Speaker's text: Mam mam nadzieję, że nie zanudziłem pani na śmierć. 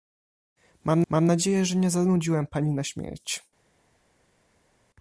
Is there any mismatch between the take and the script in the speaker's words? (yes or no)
no